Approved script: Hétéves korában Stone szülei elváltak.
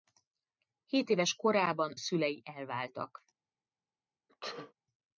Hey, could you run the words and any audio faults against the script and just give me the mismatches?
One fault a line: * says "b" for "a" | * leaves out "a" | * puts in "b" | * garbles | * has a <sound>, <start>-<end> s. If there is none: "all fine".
* leaves out "Stone"
* has a sneeze, 4.3-4.7 s